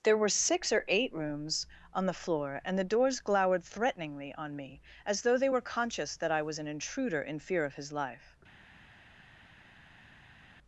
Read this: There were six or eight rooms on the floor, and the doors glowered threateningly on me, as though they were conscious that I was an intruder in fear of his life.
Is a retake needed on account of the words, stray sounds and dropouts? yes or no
no